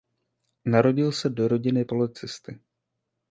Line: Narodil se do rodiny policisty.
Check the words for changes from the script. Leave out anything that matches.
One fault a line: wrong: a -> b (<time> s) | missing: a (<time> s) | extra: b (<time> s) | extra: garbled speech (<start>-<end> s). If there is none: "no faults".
no faults